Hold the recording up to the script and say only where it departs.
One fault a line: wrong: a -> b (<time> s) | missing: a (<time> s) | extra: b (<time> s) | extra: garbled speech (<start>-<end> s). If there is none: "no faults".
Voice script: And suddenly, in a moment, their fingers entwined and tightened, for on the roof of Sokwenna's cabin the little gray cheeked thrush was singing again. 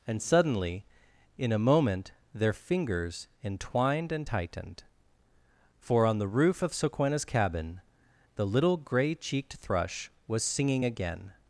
no faults